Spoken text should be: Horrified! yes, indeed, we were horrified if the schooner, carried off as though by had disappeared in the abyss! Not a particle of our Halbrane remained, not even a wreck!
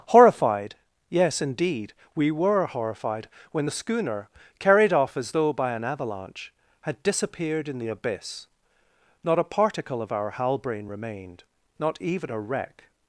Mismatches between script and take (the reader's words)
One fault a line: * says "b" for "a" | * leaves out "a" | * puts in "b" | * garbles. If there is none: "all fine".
* says "when" for "if"
* puts in "an avalanche"